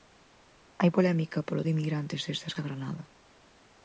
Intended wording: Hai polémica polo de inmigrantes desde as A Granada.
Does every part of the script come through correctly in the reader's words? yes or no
yes